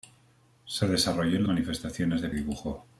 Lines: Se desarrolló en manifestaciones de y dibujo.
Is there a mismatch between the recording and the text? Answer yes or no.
no